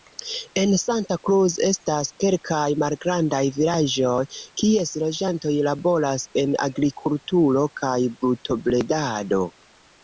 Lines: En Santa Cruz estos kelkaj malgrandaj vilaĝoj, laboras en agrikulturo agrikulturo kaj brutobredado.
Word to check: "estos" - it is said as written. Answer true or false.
false